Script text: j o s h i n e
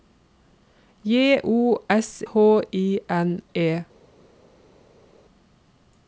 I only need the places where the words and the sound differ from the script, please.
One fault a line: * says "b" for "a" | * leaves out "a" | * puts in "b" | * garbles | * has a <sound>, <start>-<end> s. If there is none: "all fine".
all fine